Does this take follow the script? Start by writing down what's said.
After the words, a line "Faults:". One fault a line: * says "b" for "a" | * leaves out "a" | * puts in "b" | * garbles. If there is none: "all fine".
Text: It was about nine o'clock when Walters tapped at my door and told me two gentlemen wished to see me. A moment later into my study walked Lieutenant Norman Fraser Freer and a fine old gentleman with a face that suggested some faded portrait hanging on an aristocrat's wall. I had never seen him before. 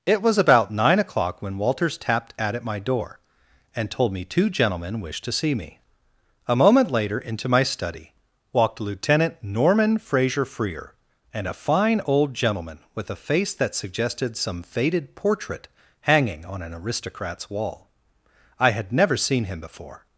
It was about nine o'clock when Walters tapped at at my door and told me two gentlemen wished to see me. A moment later into my study walked Lieutenant Norman Fraser Freer and a fine old gentleman with a face that suggested some faded portrait hanging on an aristocrat's wall. I had never seen him before.
Faults:
* puts in "at"